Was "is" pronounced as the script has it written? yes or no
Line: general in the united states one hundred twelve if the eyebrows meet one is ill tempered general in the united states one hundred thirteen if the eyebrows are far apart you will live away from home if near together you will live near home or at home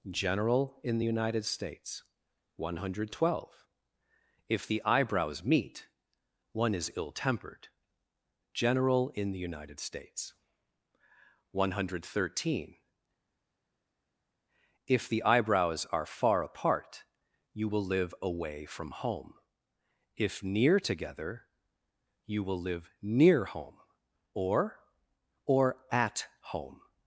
yes